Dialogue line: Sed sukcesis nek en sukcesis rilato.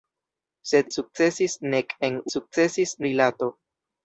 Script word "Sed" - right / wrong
right